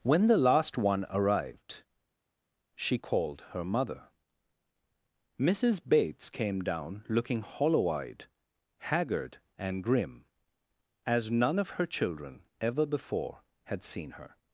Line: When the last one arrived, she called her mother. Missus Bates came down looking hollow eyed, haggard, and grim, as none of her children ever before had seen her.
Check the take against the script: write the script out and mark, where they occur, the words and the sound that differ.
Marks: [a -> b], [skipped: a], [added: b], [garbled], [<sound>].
When the last one arrived, she called her mother. Missus Bates came down looking hollow eyed, haggard, and grim, as none of her children ever before had seen her.